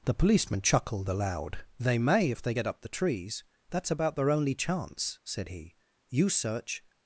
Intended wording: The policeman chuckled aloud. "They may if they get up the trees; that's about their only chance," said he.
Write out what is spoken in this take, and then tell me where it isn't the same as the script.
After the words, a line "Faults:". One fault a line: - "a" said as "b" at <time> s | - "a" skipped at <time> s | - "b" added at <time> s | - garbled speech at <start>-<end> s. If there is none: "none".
The policeman chuckled aloud. "They may if they get up the trees; that's about their only chance," said he. "You search
Faults:
- "You search" added at 6.1 s